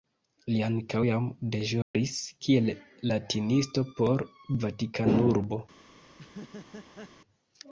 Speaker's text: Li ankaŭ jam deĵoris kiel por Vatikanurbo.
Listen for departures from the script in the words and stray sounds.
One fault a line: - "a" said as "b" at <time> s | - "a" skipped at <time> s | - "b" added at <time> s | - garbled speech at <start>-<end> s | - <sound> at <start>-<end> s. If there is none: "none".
- dropout at 1.8-1.9 s
- "latinisto" added at 3.1 s
- laugh at 6.1-7.1 s